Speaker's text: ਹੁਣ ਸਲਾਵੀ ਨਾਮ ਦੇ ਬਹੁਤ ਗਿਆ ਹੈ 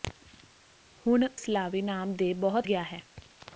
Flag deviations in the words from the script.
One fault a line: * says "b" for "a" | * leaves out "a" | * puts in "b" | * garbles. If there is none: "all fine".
all fine